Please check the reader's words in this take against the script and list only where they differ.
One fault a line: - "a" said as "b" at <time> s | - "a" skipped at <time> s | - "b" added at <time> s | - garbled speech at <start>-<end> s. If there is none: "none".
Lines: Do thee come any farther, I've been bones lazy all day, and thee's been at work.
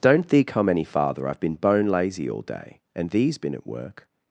- "Do" said as "Don't" at 0.0 s
- "bones" said as "bone" at 1.5 s